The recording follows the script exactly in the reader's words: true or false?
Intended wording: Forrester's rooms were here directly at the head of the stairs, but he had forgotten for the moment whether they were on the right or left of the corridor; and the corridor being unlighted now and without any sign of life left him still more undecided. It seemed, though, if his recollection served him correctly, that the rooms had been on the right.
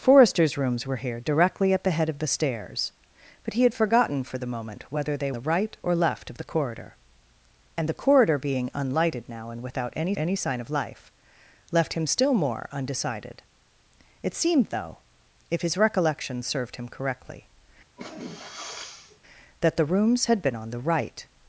false